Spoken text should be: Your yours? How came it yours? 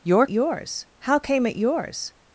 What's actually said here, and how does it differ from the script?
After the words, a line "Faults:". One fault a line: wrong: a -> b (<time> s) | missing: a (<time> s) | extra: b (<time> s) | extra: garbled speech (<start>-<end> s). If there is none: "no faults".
Your yours? How came it yours?
Faults:
no faults